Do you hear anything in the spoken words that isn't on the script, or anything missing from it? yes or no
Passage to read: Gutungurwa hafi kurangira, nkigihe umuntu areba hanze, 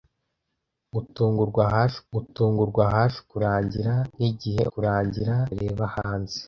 yes